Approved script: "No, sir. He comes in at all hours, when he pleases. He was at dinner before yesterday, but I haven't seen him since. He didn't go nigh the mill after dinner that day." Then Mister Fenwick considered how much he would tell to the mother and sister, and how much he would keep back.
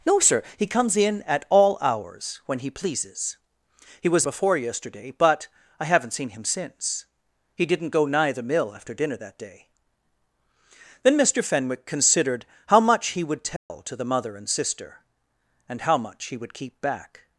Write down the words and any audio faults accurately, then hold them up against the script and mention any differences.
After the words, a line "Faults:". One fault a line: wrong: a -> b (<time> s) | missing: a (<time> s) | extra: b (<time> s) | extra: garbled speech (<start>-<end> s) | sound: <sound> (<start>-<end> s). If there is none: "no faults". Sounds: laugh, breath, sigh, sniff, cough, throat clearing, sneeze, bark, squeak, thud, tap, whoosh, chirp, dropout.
"No, sir. He comes in at all hours, when he pleases. He was before yesterday, but I haven't seen him since. He didn't go nigh the mill after dinner that day." Then Mister Fenwick considered how much he would tell to the mother and sister, and how much he would keep back.
Faults:
missing: at dinner (4.2 s)
sound: dropout (13.6-13.7 s)